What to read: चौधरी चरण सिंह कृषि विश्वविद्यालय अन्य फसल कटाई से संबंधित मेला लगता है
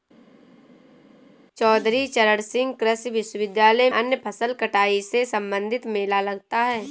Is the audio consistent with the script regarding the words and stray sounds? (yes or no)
yes